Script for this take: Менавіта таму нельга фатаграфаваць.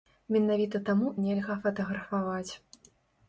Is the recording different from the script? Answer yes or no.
no